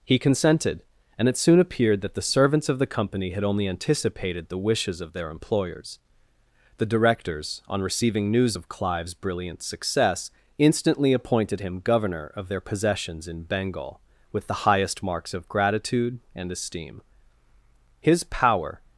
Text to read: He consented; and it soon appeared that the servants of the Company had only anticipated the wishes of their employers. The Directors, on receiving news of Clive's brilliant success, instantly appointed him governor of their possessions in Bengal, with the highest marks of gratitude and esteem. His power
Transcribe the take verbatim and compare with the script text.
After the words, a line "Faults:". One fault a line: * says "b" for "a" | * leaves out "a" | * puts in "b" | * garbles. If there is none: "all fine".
He consented; and it soon appeared that the servants of the Company had only anticipated the wishes of their employers. The Directors, on receiving news of Clive's brilliant success, instantly appointed him governor of their possessions in Bengal, with the highest marks of gratitude and esteem. His power
Faults:
all fine